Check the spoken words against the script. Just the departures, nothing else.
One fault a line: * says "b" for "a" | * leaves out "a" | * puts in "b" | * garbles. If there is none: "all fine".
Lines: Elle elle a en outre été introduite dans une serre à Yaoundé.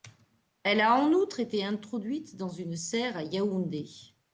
* leaves out "elle"